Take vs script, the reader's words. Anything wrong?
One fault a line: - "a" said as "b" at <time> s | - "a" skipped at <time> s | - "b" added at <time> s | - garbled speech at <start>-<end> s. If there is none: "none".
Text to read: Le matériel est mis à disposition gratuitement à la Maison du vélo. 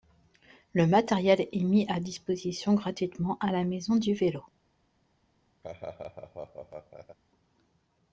none